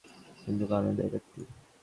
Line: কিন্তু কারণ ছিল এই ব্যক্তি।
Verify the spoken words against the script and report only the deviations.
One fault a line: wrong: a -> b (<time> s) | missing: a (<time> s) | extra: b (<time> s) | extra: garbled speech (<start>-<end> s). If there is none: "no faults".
missing: ছিল (0.9 s)